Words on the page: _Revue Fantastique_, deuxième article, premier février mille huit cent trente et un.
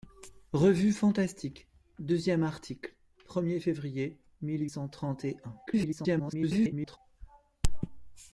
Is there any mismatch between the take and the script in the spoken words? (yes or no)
yes